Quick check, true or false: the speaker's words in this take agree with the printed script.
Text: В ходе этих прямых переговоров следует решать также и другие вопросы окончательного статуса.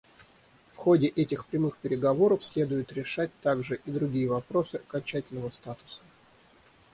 true